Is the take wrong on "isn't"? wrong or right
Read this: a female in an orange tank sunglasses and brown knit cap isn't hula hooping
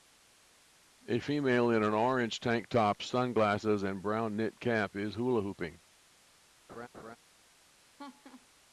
wrong